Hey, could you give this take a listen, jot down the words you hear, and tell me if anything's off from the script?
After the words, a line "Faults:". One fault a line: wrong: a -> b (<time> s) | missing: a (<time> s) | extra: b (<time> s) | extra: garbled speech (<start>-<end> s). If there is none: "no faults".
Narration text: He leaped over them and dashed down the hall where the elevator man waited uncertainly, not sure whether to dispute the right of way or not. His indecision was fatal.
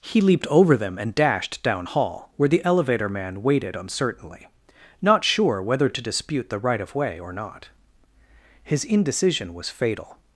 He leaped over them and dashed down hall where the elevator man waited uncertainly, not sure whether to dispute the right of way or not. His indecision was fatal.
Faults:
missing: the (1.9 s)